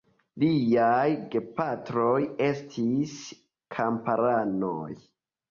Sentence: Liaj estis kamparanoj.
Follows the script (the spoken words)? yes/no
no